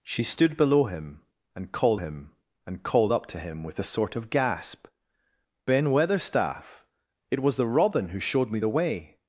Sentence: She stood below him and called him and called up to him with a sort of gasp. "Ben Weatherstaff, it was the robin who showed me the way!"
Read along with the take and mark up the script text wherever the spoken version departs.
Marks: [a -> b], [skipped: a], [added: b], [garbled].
She stood below him and called him and called up to him with a sort of gasp. "Ben Weatherstaff, it was the robin who showed me the way!"